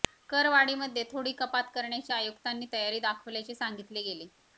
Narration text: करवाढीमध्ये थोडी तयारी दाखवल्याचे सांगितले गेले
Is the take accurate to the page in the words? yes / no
no